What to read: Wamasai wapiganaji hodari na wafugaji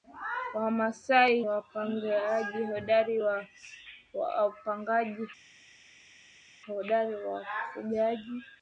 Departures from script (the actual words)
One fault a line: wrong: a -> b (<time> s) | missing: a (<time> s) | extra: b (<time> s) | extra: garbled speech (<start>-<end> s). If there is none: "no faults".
no faults